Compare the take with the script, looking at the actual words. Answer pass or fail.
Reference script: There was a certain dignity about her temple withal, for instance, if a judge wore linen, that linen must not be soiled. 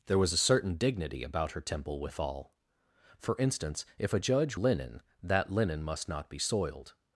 fail